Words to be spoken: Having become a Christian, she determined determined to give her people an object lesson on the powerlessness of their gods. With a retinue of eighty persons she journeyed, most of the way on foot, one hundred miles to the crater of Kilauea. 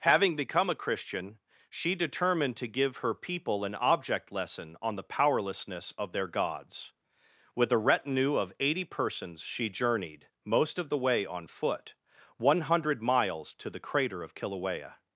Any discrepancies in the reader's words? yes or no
yes